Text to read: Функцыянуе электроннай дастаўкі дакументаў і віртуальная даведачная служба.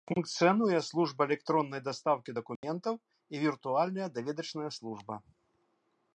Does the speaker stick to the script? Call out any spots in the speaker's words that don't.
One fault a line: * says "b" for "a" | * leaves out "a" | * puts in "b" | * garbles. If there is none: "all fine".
* puts in "служба"